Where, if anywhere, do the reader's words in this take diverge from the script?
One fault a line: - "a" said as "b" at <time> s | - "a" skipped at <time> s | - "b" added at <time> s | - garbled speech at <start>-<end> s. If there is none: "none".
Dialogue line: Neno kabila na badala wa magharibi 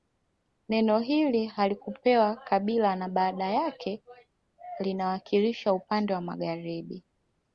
- "hili halikupewa" added at 1.0 s
- "yake linawakilisha upande" added at 3.5 s